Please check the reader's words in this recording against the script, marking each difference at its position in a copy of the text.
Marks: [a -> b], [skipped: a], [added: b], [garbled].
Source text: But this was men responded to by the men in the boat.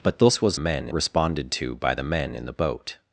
But this was men responded to by the men in the boat.